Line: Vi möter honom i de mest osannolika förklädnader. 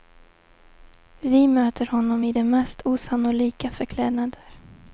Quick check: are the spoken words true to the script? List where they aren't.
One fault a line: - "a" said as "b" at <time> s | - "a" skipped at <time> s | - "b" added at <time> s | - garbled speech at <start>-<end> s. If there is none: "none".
none